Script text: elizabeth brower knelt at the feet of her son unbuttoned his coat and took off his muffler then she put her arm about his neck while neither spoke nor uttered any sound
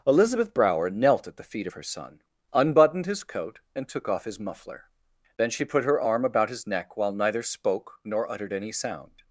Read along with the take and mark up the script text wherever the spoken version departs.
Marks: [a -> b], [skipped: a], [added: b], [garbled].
elizabeth brower knelt at the feet of her son unbuttoned his coat and took off his muffler then she put her arm about his neck while neither spoke nor uttered any sound